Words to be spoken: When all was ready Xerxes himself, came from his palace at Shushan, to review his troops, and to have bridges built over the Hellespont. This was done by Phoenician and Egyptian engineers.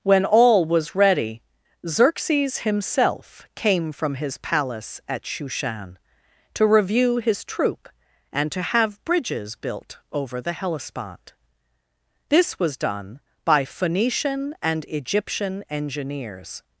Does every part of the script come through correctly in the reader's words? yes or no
no